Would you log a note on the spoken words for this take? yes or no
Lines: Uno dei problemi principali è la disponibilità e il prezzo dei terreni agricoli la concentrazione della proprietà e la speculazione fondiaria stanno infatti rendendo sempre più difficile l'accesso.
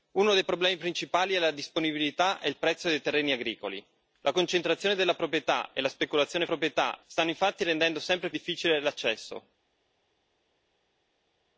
yes